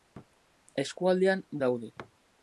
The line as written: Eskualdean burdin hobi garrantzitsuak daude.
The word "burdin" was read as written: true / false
false